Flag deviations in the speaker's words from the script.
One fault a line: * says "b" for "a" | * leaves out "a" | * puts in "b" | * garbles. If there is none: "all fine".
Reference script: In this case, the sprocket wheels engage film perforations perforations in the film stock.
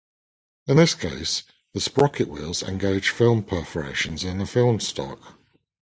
* leaves out "perforations"